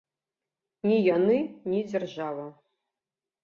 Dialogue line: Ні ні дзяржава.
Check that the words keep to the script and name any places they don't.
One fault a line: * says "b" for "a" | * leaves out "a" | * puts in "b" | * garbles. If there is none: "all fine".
* puts in "яны"